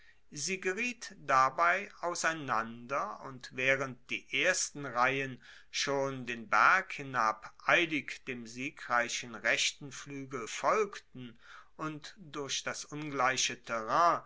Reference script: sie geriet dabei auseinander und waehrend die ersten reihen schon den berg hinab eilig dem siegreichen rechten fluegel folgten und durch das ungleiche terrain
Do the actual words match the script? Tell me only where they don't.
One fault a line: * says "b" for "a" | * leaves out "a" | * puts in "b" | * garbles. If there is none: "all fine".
all fine